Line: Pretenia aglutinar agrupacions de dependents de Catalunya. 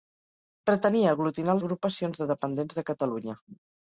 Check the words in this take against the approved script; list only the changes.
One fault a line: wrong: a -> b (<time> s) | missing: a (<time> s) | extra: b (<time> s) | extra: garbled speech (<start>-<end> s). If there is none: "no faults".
no faults